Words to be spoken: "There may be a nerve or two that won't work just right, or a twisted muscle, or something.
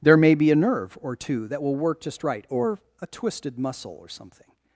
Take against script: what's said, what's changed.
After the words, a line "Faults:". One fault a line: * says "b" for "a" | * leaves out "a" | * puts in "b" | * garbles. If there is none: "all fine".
"There may be a nerve or two that will work just right, or a twisted muscle, or something.
Faults:
* says "will" for "won't"